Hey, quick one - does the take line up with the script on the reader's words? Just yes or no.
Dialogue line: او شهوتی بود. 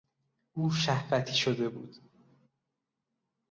no